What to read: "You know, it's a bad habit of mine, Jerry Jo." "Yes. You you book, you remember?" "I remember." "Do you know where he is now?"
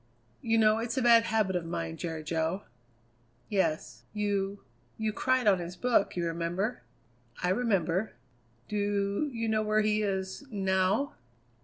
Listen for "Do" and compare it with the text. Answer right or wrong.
right